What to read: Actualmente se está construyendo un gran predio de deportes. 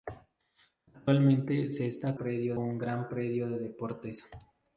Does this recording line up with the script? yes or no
no